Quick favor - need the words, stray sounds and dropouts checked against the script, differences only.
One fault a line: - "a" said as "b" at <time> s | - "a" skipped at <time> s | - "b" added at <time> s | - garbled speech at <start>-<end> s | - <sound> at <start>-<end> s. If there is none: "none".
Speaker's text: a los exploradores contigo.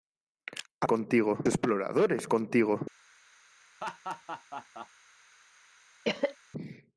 - "los" said as "contigo" at 0.9 s
- laugh at 3.8-4.9 s
- cough at 6.0-6.4 s